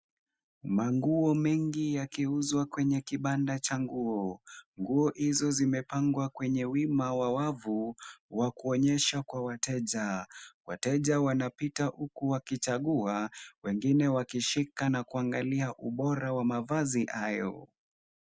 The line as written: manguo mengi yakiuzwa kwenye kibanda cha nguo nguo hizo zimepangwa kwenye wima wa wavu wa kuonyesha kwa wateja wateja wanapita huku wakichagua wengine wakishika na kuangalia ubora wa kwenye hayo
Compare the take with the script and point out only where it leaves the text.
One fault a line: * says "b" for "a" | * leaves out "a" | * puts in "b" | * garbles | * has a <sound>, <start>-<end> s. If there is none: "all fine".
* says "mavazi" for "kwenye"